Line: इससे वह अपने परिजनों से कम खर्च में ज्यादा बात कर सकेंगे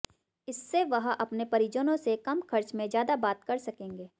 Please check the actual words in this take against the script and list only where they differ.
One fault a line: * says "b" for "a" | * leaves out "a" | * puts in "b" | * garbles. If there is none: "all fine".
all fine